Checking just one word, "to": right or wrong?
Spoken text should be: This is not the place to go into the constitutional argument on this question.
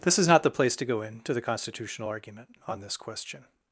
right